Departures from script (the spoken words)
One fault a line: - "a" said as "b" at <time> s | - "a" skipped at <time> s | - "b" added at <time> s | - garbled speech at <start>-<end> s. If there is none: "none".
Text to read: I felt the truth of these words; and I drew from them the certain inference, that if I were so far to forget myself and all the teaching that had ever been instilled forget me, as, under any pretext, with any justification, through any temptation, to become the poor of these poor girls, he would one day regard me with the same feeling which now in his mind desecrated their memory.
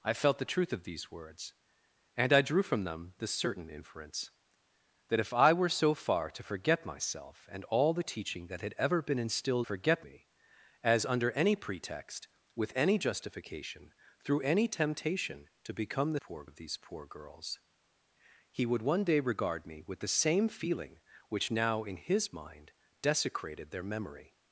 none